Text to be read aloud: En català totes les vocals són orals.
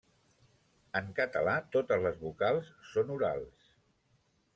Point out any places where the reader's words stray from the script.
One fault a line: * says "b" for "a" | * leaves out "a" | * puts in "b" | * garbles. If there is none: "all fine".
all fine